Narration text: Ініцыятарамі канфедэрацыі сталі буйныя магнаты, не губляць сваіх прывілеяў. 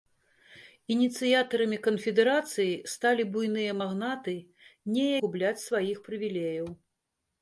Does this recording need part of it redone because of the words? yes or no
no